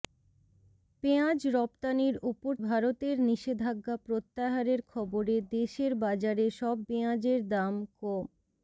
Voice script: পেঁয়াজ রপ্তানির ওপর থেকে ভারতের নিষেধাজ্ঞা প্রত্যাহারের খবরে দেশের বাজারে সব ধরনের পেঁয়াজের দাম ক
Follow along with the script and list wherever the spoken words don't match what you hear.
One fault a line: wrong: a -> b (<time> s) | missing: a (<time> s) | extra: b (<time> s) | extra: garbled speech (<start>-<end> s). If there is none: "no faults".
missing: থেকে (2.5 s)
missing: ধরনের (6.8 s)